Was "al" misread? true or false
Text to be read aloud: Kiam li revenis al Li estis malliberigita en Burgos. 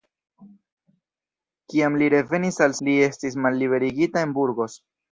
false